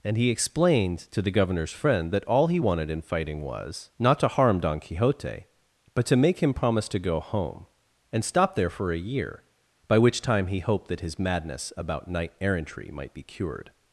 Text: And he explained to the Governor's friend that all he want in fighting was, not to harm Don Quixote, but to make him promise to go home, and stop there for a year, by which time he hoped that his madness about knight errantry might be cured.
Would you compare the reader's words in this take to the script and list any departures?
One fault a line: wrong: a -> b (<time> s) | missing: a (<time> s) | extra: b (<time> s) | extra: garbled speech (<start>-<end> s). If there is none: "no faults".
wrong: want -> wanted (2.6 s)